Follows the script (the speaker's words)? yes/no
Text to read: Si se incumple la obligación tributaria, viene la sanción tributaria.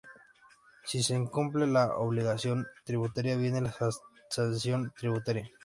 yes